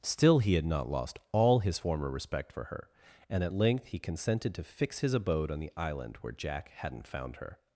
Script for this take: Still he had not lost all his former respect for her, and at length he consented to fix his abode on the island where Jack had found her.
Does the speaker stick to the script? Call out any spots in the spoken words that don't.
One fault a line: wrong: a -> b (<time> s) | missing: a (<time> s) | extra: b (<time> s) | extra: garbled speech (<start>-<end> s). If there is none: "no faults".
wrong: had -> hadn't (6.7 s)